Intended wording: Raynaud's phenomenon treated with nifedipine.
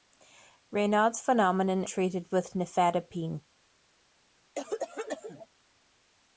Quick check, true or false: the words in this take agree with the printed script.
true